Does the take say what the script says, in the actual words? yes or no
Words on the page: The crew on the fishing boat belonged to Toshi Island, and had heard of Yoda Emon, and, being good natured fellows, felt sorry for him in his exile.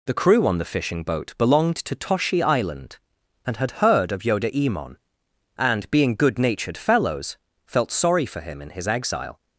yes